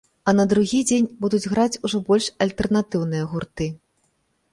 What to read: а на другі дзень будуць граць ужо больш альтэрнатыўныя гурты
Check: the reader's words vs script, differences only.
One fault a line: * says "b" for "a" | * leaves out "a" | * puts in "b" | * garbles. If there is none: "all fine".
all fine